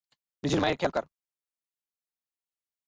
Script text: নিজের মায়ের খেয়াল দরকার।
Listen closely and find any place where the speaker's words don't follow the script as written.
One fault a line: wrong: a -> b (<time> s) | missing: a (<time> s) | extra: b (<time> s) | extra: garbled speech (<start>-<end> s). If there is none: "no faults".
no faults